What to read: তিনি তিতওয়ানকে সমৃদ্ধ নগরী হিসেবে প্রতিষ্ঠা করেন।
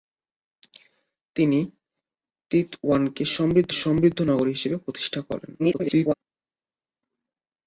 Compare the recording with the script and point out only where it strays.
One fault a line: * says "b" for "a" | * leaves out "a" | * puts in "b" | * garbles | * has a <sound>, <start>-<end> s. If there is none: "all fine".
* puts in "সমৃদ্ধ"
* garbles